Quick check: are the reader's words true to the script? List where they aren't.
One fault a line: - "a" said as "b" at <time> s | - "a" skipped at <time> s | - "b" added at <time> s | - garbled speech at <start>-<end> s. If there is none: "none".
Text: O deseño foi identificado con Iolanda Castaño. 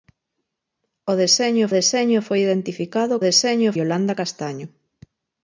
- "deseño" added at 1.8 s
- "con" said as "deseño" at 3.3 s